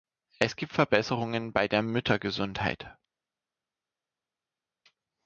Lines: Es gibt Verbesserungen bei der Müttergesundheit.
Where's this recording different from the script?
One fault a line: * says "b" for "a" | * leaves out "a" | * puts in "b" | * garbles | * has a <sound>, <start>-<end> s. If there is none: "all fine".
all fine